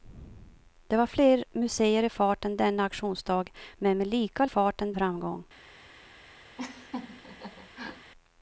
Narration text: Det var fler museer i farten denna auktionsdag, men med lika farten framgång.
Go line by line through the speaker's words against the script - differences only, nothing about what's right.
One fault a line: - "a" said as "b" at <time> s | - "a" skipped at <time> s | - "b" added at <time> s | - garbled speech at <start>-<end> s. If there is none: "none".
none